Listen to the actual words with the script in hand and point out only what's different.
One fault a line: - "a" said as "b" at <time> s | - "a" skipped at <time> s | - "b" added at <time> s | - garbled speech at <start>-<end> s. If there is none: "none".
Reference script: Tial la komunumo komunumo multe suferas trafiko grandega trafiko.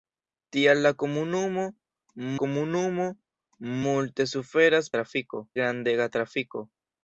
none